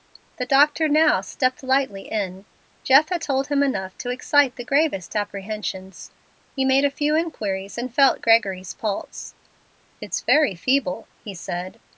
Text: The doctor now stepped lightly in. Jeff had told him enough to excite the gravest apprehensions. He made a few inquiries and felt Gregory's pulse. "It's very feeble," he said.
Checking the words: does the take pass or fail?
pass